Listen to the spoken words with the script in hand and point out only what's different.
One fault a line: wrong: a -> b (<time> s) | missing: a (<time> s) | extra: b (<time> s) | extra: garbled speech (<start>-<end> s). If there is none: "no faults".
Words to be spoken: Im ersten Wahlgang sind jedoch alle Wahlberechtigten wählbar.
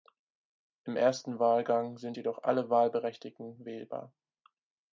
no faults